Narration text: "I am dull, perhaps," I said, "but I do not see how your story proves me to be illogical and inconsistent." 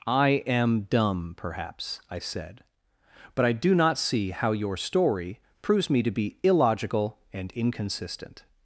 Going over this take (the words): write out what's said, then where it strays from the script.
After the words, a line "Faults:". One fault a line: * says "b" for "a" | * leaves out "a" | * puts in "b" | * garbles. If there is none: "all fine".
"I am dumb, perhaps," I said, "but I do not see how your story proves me to be illogical and inconsistent."
Faults:
* says "dumb" for "dull"